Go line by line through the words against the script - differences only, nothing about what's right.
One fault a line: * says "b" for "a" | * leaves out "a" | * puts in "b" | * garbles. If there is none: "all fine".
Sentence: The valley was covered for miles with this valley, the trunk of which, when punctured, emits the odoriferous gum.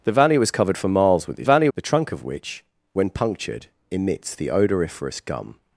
all fine